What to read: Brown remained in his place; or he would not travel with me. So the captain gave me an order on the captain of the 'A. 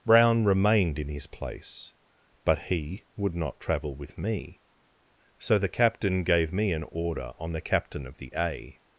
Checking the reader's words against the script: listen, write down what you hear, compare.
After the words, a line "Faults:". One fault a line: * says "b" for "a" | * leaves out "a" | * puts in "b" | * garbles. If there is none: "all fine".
Brown remained in his place; but he would not travel with me. So the captain gave me an order on the captain of the 'A.
Faults:
* says "but" for "or"